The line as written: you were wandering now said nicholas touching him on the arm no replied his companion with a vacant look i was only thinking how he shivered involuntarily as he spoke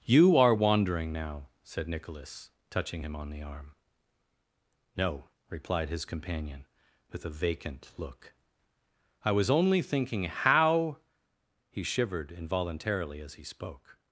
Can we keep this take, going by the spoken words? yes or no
no